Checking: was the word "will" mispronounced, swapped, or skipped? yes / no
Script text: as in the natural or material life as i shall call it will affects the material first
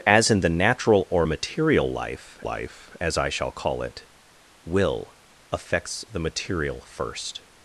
no